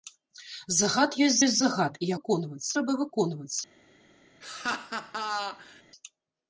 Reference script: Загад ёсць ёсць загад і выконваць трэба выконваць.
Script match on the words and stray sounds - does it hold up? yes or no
no